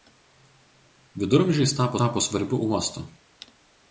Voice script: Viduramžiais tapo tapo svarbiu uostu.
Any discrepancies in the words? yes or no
no